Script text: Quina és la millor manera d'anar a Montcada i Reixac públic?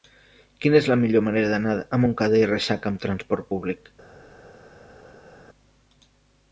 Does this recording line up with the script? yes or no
no